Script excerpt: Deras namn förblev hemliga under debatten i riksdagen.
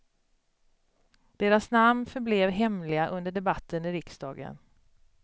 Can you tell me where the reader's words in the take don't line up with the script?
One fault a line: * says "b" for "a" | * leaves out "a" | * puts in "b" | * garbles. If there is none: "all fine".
all fine